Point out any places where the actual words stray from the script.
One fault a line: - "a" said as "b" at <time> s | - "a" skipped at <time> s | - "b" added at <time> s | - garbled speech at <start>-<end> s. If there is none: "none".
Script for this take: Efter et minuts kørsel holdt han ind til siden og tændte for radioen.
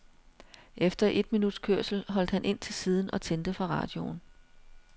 none